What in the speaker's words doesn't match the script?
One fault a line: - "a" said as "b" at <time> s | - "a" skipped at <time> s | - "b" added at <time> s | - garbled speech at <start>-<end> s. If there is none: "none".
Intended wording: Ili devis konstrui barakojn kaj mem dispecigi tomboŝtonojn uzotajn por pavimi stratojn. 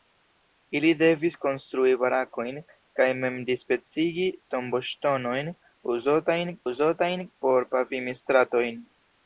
- "uzotajn" added at 6.7 s